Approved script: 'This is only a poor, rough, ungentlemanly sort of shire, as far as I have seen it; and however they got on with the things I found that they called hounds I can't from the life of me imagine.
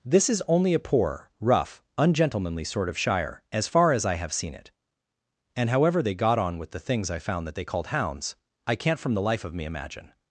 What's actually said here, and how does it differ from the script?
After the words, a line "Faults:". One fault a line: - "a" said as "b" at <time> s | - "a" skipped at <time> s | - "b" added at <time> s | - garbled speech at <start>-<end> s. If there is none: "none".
'This is only a poor, rough, ungentlemanly sort of shire, as far as I have seen it; and however they got on with the things I found that they called hounds I can't from the life of me imagine.
Faults:
none